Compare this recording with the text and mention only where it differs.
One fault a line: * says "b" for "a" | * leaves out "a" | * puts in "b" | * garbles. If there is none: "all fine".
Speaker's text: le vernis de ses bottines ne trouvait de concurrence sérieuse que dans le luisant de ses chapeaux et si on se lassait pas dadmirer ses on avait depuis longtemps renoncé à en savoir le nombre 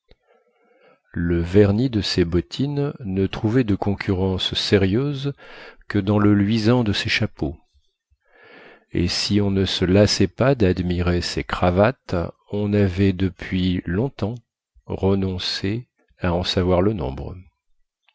* puts in "ne"
* puts in "cravates"